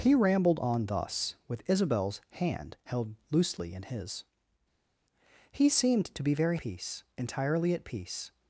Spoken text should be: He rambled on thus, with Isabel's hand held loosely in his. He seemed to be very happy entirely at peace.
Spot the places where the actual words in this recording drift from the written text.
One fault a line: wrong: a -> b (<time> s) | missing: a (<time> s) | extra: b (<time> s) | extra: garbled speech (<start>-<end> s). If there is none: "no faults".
wrong: happy -> peace (6.6 s)